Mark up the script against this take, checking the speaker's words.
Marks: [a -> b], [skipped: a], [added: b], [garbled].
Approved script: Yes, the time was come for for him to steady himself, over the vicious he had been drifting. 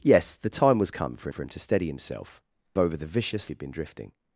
Yes, the time was come for for him to steady himself, over the vicious he had been drifting.